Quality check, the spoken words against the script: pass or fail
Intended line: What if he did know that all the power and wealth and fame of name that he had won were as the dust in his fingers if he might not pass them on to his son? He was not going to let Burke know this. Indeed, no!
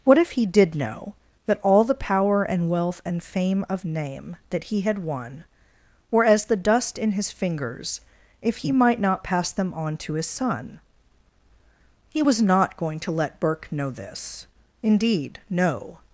pass